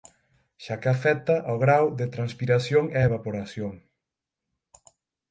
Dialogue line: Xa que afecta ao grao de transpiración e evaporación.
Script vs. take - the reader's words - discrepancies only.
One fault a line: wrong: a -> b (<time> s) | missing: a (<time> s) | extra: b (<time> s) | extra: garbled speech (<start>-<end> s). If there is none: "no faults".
no faults